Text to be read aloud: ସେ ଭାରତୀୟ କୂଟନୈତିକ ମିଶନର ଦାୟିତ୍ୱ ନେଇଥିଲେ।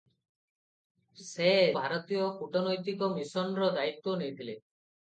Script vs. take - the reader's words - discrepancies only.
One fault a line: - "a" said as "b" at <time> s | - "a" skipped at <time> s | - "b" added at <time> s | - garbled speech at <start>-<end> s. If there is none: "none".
none